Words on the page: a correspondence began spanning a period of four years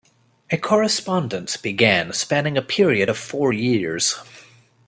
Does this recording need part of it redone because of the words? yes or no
no